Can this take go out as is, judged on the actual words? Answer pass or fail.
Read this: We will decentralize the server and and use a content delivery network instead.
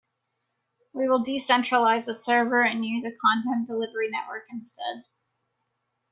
fail